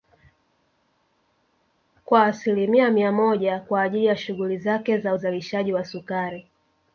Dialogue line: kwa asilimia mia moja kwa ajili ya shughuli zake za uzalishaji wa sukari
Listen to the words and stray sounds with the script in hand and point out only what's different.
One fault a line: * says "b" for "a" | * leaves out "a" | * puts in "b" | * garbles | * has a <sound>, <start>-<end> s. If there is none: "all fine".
all fine